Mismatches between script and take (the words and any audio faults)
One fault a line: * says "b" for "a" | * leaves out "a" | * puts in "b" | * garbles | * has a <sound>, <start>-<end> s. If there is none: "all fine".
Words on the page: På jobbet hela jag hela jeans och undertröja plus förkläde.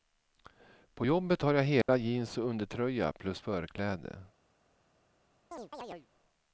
* says "har" for "hela"
* has a dropout, 1.8-1.9 s
* has a chirp, 5.5-6.1 s